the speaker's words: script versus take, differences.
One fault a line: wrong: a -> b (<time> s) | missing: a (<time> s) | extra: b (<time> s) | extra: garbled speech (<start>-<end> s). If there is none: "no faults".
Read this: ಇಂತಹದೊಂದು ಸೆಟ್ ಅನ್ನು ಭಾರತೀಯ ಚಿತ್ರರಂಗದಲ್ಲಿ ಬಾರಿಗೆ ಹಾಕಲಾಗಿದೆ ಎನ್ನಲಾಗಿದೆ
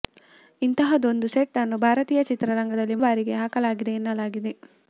no faults